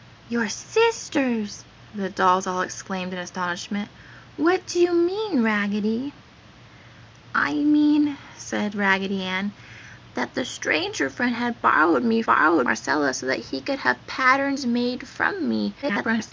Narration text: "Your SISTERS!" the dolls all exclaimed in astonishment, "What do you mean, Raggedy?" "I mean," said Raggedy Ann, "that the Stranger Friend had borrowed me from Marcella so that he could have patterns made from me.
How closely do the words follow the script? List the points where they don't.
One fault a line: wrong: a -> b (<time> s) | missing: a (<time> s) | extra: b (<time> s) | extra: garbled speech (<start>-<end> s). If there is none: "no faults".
wrong: from -> borrowed (12.2 s)
extra: garbled speech (15.8-16.3 s)